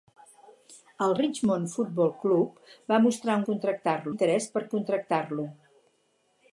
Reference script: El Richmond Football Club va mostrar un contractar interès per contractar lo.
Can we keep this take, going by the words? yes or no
yes